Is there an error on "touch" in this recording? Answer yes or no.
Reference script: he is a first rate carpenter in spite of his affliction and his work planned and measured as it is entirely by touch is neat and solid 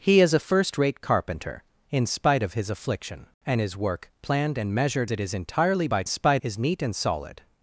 yes